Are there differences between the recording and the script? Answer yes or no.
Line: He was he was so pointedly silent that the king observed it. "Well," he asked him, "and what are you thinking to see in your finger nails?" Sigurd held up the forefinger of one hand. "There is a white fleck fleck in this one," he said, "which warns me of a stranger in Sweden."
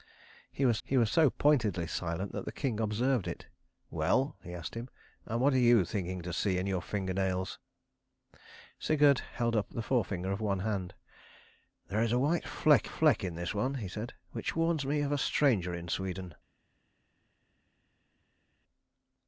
no